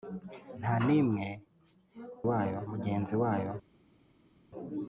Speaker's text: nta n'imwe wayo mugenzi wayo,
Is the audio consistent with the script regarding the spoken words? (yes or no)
yes